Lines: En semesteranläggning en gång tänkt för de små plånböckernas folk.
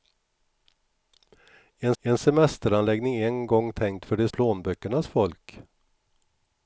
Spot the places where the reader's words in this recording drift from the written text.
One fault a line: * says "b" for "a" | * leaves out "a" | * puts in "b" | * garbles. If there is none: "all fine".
* puts in "en"
* leaves out "små"